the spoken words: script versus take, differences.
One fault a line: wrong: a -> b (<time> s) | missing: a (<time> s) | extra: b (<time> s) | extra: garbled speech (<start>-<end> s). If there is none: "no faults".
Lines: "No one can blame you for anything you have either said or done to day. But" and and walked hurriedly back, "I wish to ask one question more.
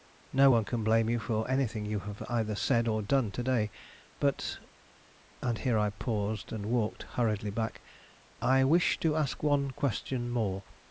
extra: here I paused (5.6 s)